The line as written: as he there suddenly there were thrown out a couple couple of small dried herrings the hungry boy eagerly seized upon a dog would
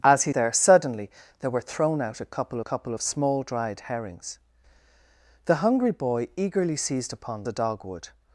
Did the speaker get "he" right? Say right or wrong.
right